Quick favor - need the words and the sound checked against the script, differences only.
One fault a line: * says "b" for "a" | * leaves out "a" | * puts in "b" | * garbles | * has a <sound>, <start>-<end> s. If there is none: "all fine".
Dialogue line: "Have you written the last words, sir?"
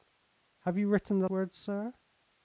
* leaves out "last"